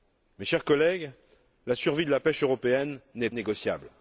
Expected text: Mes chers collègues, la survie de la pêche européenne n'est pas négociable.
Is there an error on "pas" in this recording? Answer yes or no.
yes